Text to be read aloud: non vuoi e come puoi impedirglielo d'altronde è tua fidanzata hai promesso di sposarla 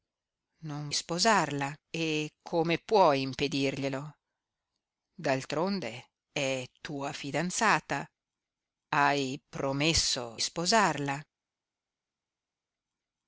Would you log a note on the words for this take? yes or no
yes